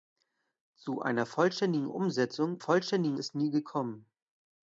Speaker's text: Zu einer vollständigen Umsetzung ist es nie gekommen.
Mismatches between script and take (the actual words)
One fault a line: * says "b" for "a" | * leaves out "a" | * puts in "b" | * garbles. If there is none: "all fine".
* says "vollständigen" for "ist"